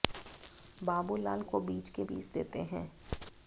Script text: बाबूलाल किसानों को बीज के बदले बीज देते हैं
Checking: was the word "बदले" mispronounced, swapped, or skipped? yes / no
yes